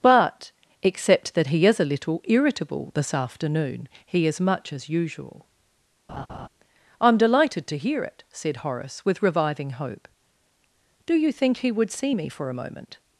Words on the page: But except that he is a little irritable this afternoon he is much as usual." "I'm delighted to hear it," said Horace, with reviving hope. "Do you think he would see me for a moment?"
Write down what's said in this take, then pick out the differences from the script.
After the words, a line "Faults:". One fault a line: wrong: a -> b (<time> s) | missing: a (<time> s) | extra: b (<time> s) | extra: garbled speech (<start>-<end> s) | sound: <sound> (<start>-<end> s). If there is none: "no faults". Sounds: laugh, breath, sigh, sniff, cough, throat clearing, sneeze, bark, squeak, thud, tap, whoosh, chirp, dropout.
But except that he is a little irritable this afternoon he is much as usual." "I'm delighted to hear it," said Horace, with reviving hope. "Do you think he would see me for a moment?"
Faults:
sound: laugh (6.1-6.5 s)